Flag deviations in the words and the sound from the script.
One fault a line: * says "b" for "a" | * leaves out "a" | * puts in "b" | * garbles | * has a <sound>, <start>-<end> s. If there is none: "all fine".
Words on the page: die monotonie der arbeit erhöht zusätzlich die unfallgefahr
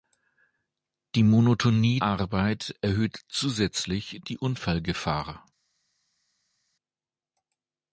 * leaves out "der"